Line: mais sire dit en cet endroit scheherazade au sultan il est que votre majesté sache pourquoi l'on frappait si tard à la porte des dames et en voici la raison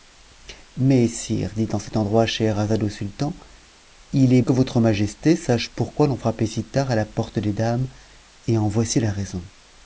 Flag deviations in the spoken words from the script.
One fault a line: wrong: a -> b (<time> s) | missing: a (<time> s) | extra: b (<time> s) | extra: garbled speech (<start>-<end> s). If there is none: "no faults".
no faults